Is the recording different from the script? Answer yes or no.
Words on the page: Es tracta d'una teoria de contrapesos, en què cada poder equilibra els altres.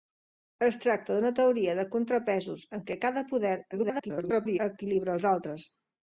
yes